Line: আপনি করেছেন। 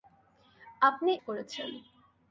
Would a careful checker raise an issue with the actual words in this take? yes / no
no